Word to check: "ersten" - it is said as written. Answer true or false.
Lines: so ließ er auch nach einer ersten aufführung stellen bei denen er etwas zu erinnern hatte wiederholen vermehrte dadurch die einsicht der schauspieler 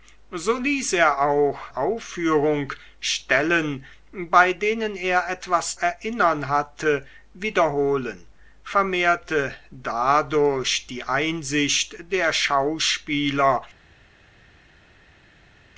false